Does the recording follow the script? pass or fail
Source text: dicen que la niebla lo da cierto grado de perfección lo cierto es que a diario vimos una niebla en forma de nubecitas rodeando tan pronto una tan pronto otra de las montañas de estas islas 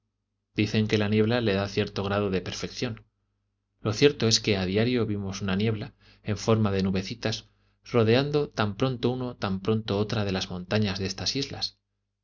fail